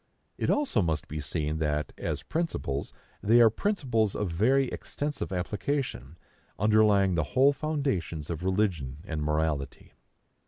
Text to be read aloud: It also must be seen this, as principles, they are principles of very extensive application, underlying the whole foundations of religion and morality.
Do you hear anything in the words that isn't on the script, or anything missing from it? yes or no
yes